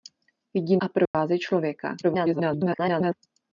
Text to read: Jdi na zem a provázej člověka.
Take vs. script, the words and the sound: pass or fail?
fail